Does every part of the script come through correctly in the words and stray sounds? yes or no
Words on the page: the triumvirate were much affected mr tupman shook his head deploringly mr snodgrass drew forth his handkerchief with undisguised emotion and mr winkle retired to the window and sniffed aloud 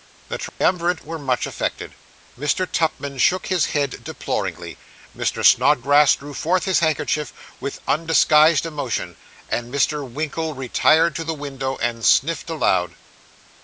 no